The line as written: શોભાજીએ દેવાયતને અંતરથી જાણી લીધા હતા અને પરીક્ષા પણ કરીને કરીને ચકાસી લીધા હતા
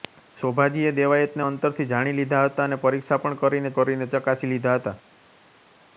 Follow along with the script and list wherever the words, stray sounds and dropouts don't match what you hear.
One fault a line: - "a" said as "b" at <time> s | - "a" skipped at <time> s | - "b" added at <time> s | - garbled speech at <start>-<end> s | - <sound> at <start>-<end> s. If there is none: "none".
none